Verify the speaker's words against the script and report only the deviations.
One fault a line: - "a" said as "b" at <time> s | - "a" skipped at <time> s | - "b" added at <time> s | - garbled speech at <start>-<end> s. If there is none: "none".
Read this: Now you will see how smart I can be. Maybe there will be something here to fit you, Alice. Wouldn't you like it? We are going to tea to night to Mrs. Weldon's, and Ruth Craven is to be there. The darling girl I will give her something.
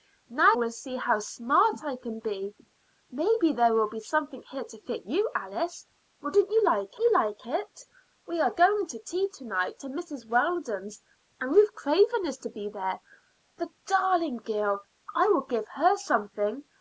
- "you" skipped at 0.6 s
- "you like" added at 7.0 s